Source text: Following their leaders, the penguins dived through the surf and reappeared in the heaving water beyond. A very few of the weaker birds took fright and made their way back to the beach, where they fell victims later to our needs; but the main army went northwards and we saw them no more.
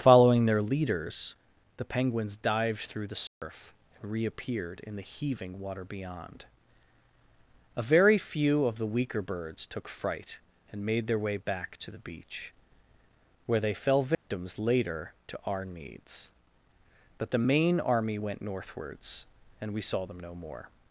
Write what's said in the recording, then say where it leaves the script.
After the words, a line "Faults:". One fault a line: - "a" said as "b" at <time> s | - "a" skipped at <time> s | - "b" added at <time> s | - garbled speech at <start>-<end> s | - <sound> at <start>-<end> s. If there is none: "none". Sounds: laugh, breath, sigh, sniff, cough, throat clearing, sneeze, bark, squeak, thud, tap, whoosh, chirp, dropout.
Following their leaders, the penguins dived through the surf and reappeared in the heaving water beyond. A very few of the weaker birds took fright and made their way back to the beach, where they fell victims later to our needs; but the main army went northwards and we saw them no more.
Faults:
- dropout at 3.3-3.4 s
- dropout at 14.1-14.3 s